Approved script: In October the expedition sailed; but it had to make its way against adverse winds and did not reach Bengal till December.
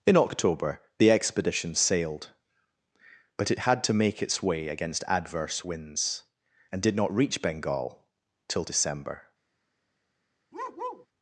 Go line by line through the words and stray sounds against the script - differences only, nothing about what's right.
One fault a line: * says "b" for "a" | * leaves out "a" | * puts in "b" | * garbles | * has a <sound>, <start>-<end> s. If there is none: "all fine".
* has a bark, 10.5-11.1 s